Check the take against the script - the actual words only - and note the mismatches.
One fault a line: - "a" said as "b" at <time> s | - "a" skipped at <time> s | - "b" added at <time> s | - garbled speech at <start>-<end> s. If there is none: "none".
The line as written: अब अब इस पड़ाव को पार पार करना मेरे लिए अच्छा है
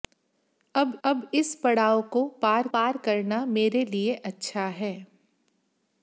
none